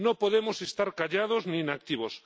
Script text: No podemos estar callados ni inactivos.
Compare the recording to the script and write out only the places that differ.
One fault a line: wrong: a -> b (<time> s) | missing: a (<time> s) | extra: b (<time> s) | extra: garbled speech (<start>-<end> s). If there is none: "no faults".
no faults